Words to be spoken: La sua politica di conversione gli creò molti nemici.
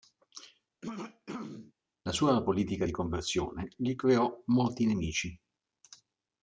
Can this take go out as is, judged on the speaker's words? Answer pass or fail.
pass